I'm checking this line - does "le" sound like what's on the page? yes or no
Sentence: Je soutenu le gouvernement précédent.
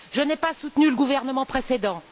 yes